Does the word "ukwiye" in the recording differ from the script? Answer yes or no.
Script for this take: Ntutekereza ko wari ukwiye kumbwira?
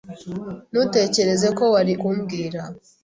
yes